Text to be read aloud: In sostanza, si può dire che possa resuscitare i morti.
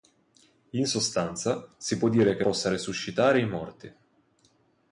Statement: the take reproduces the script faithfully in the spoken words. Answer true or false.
true